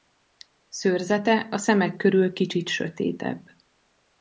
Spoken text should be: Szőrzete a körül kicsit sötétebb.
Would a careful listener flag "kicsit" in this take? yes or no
no